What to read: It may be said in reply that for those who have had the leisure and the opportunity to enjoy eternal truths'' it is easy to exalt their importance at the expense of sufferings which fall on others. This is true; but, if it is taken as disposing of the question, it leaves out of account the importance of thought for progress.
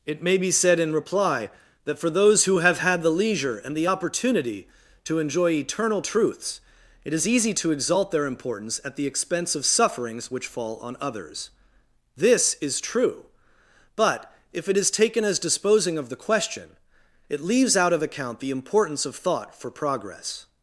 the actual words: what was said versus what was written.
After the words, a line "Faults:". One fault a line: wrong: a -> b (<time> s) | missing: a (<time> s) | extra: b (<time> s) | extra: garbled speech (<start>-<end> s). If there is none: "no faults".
It may be said in reply that for those who have had the leisure and the opportunity to enjoy eternal truths'' it is easy to exalt their importance at the expense of sufferings which fall on others. This is true; but, if it is taken as disposing of the question, it leaves out of account the importance of thought for progress.
Faults:
no faults